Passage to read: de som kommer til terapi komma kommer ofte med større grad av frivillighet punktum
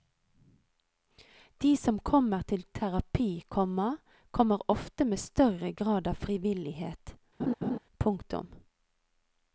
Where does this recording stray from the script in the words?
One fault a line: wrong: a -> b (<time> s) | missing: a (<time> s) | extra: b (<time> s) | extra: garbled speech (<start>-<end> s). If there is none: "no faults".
no faults